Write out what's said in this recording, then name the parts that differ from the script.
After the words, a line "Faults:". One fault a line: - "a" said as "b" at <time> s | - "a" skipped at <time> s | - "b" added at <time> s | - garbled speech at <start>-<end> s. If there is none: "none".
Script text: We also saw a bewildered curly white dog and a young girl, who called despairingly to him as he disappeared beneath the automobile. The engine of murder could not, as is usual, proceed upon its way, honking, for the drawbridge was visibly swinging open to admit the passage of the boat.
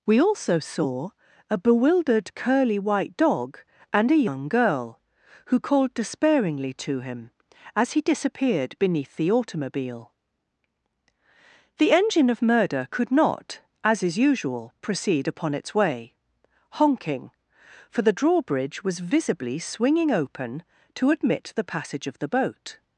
We also saw a bewildered curly white dog and a young girl, who called despairingly to him as he disappeared beneath the automobile. The engine of murder could not, as is usual, proceed upon its way, honking, for the drawbridge was visibly swinging open to admit the passage of the boat.
Faults:
none